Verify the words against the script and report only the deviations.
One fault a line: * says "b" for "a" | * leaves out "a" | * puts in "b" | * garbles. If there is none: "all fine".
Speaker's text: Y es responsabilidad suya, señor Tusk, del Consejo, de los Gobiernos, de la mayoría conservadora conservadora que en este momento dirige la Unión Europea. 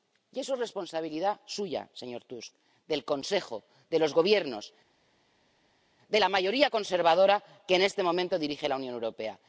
* puts in "eso"
* leaves out "conservadora"